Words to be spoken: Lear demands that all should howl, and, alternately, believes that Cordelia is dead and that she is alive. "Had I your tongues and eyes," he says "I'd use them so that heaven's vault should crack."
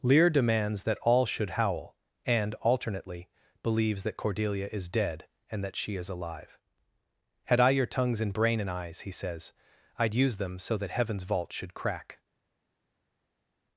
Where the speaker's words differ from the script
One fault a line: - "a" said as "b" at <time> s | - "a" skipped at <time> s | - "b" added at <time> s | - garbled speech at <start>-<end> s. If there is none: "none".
- "brain and" added at 8.3 s